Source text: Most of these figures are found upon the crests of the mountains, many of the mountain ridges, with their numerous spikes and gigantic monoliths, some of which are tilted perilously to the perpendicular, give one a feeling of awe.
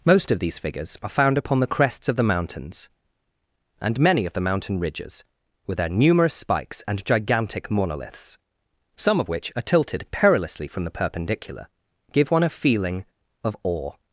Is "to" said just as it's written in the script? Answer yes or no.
no